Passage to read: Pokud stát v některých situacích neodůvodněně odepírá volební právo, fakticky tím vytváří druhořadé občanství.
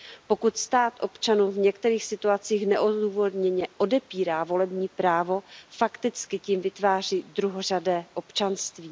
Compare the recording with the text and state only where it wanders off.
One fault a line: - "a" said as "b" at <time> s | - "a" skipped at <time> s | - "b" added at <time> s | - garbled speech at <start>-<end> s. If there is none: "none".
- "občanům" added at 1.0 s